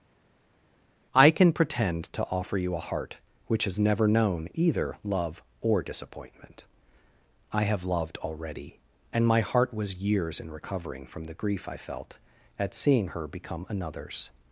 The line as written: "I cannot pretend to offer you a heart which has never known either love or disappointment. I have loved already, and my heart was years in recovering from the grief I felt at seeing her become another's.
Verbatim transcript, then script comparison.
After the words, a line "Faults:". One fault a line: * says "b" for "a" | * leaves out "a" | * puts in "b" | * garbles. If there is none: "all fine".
"I can pretend to offer you a heart which has never known either love or disappointment. I have loved already, and my heart was years in recovering from the grief I felt at seeing her become another's.
Faults:
* says "can" for "cannot"